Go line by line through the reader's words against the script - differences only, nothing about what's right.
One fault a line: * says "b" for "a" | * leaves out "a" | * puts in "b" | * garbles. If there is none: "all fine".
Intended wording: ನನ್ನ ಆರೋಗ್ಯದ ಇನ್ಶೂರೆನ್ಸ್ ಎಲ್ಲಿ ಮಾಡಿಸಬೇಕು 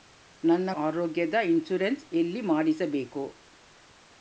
all fine